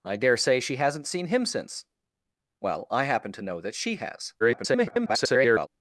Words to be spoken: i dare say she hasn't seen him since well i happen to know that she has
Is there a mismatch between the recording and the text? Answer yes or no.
yes